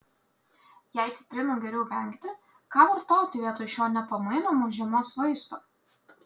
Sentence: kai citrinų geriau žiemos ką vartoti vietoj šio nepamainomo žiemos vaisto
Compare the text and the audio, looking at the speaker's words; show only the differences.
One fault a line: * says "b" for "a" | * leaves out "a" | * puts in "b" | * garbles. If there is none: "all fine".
* says "jei" for "kai"
* says "vengti" for "žiemos"